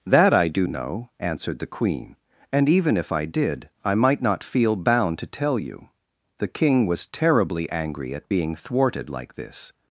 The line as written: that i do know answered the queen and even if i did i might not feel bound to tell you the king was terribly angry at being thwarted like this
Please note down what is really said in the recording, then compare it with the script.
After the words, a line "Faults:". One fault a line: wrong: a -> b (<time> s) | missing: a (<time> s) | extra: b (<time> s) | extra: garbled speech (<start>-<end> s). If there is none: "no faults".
that i do know answered the queen and even if i did i might not feel bound to tell you the king was terribly angry at being thwarted like this
Faults:
no faults